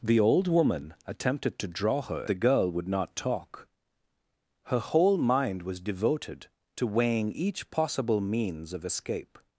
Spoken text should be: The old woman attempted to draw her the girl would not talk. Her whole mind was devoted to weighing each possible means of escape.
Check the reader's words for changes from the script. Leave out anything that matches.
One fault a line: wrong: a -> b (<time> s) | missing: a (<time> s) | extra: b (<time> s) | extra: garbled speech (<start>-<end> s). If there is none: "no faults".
no faults